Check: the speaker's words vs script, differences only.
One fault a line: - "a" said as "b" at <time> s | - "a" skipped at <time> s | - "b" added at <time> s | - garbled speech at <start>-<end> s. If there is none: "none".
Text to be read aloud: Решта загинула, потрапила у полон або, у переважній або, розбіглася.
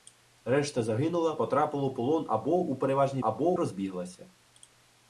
none